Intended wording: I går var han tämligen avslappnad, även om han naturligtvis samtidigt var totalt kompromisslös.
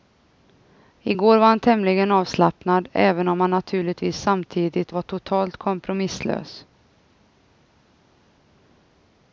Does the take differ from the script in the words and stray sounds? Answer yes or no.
no